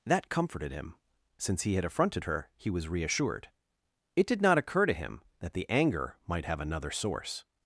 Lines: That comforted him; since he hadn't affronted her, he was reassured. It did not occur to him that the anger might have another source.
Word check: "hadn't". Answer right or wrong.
wrong